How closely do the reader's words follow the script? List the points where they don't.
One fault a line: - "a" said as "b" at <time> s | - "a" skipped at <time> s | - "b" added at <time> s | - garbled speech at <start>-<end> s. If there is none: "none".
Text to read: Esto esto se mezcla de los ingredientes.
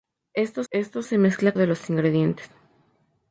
none